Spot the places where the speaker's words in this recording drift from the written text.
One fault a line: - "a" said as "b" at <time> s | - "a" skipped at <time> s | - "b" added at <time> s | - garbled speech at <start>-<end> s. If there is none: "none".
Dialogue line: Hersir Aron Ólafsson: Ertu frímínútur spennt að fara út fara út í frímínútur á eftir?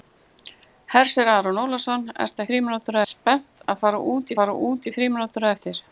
none